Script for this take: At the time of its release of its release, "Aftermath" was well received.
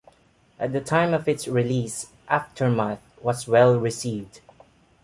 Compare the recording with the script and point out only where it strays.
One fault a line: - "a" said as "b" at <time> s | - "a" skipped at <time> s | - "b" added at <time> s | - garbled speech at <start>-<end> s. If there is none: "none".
- "of its release" skipped at 2.1 s